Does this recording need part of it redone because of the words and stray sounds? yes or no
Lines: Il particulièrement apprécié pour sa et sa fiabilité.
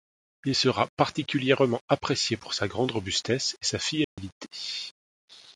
yes